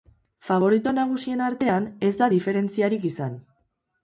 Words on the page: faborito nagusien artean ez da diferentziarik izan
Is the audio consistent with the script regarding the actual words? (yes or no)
yes